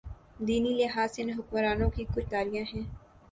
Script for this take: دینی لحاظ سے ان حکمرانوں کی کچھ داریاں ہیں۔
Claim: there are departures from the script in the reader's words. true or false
false